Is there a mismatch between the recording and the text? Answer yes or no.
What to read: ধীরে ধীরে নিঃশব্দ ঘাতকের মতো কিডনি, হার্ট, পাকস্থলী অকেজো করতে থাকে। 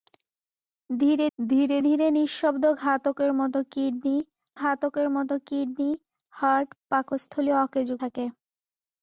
yes